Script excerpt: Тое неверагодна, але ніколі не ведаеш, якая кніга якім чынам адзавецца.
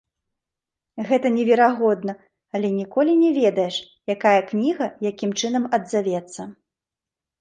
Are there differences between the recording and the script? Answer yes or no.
yes